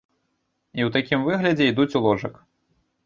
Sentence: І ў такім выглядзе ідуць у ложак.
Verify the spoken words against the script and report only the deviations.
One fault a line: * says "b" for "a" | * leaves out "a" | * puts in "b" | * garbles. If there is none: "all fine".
all fine